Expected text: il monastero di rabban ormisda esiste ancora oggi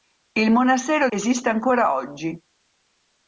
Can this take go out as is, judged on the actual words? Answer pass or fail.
fail